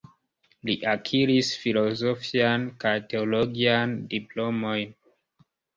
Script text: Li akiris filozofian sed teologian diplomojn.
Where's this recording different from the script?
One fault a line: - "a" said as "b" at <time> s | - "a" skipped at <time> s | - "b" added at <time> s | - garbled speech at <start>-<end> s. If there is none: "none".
- "sed" said as "kaj" at 2.8 s